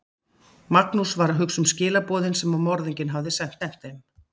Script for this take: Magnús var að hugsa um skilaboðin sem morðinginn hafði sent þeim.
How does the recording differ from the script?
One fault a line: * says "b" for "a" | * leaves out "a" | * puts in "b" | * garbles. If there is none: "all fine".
* puts in "sent"